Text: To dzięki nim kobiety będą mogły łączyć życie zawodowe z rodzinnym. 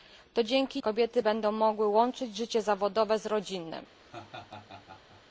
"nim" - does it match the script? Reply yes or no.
no